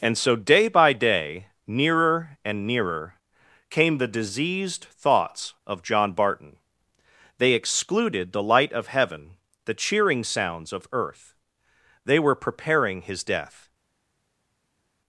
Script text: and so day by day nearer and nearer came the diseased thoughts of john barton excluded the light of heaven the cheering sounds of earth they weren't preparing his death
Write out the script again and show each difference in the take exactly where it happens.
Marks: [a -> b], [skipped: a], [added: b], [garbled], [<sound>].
and so day by day nearer and nearer came the diseased thoughts of john barton [added: they] excluded the light of heaven the cheering sounds of earth they [weren't -> were] preparing his death